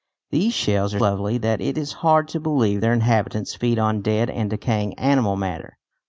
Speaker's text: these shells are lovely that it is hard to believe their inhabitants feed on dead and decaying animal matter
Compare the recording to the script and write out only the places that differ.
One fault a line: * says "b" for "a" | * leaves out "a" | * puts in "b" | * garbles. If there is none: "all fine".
all fine